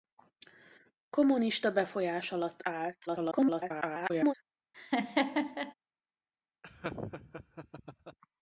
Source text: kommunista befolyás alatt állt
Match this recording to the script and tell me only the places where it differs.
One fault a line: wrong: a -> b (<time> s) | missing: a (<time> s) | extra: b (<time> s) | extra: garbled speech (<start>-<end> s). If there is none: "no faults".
extra: garbled speech (3.1-4.3 s)